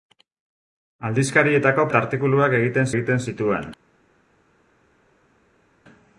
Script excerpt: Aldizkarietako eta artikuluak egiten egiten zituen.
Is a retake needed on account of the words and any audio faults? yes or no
no